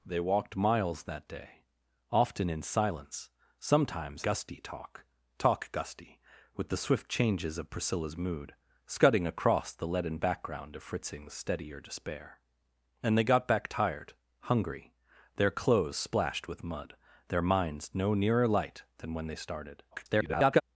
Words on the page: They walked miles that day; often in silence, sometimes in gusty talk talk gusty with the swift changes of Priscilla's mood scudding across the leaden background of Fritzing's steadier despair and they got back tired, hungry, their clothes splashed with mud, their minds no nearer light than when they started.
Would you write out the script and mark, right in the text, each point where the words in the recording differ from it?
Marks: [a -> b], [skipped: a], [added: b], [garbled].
They walked miles that day; often in silence, sometimes [skipped: in] gusty talk talk gusty with the swift changes of Priscilla's mood scudding across the leaden background of Fritzing's steadier despair and they got back tired, hungry, their clothes splashed with mud, their minds no nearer light than when they started. [garbled]